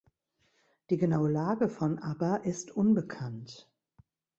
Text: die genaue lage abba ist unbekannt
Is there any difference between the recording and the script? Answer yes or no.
yes